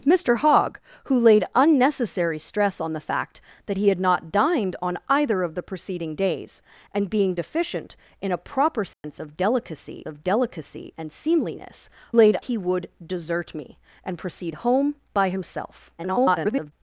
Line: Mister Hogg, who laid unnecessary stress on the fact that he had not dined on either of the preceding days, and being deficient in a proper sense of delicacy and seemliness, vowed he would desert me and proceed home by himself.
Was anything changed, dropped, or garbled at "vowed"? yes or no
yes